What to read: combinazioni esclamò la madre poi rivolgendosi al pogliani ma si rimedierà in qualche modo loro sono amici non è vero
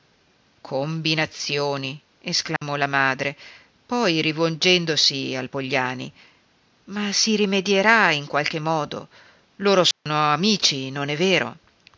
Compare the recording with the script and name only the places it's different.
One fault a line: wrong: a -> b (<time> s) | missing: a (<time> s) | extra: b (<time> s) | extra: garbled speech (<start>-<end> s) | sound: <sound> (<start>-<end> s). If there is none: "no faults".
sound: dropout (2.6-2.6 s)
sound: dropout (9.9-10.1 s)